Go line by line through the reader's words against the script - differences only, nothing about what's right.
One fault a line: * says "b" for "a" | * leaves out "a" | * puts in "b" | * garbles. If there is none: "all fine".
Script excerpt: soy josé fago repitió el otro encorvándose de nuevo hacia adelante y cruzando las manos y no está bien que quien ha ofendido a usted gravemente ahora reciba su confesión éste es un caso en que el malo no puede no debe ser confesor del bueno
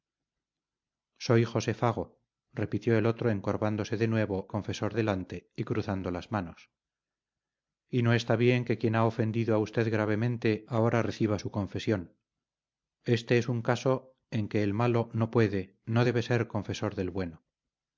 * says "confesor" for "hacia"